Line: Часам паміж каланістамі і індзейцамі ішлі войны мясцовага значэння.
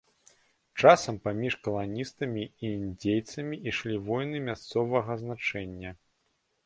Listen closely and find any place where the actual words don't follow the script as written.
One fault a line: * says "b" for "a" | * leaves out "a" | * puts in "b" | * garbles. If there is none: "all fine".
all fine